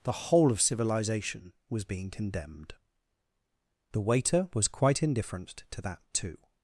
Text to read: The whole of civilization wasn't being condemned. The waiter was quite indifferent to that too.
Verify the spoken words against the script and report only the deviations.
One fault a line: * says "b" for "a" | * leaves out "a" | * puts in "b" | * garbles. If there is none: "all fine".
* says "was" for "wasn't"